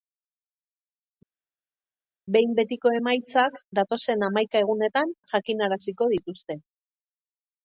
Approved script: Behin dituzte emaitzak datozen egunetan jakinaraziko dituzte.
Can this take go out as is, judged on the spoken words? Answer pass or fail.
fail